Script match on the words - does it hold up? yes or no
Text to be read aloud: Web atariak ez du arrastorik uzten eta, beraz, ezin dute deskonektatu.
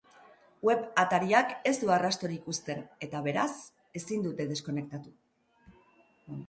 yes